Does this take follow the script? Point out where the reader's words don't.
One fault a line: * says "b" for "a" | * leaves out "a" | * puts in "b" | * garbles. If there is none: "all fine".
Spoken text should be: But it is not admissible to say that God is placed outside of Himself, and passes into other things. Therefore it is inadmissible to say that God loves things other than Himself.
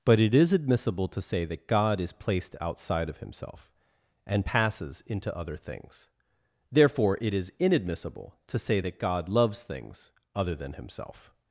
* leaves out "not"